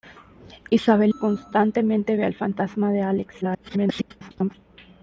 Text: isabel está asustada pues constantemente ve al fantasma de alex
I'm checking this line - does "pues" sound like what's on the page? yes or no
no